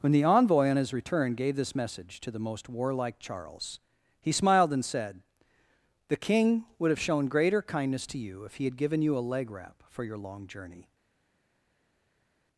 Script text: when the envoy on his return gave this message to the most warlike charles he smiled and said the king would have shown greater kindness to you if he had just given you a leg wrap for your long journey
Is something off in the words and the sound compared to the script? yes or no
yes